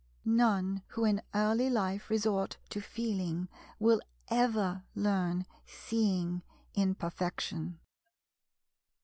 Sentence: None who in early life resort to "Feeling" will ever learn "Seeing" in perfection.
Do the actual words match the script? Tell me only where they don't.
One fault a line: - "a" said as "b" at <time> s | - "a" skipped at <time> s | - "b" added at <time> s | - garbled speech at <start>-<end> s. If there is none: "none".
none